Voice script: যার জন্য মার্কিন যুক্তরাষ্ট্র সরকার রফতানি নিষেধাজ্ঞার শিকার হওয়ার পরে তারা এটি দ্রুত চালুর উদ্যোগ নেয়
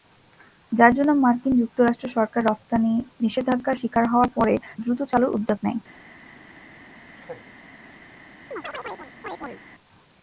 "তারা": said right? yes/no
no